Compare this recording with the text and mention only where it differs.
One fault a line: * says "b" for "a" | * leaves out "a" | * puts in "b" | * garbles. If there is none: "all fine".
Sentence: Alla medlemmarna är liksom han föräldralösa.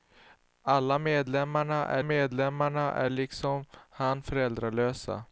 * puts in "medlemmarna är"